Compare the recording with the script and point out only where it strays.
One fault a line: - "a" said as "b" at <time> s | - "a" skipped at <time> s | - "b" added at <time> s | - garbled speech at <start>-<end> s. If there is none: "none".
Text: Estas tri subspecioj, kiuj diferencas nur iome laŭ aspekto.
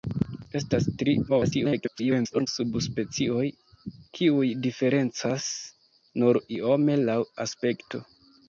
- garbled speech at 1.3-2.5 s